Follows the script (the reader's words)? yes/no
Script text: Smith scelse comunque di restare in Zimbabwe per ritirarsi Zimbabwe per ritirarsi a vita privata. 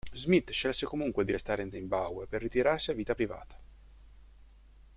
no